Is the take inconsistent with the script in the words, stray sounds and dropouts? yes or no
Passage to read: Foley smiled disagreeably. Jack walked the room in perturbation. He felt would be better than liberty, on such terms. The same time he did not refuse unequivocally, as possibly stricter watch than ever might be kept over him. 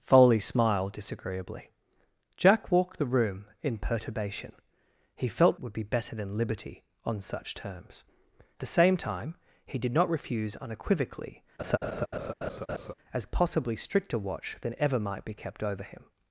yes